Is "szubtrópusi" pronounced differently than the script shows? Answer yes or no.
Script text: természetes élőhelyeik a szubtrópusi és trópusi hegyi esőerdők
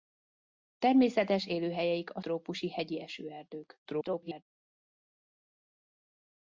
yes